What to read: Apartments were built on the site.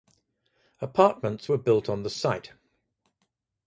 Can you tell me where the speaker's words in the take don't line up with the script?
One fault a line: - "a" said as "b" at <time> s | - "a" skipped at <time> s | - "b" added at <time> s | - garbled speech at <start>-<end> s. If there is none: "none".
none